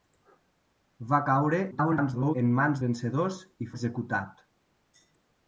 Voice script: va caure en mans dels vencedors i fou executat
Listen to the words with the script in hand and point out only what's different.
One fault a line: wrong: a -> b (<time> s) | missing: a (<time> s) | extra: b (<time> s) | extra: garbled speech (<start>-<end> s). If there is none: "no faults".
extra: garbled speech (1.7-2.3 s)
missing: dels (2.8 s)
missing: fou (3.7 s)